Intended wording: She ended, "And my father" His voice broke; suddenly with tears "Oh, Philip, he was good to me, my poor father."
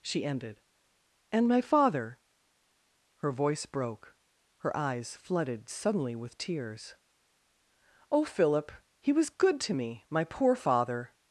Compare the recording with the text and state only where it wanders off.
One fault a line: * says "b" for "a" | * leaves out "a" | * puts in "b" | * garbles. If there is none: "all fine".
* says "Her" for "His"
* puts in "her eyes flooded"